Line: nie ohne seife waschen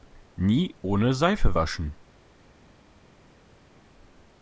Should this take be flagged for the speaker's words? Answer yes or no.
no